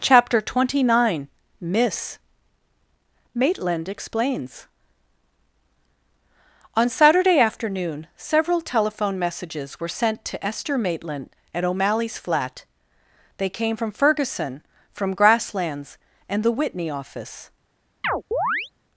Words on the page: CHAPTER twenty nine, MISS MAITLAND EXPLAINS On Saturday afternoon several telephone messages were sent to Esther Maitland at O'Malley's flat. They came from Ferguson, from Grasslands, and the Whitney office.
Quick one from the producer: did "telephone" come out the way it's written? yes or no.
yes